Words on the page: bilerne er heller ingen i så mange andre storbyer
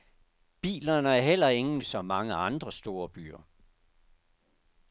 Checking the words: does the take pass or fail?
pass